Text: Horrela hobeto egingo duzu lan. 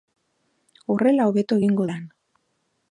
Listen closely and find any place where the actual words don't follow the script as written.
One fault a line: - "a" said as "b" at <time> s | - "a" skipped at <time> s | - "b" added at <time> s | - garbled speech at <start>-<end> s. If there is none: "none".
- "duzu" skipped at 1.9 s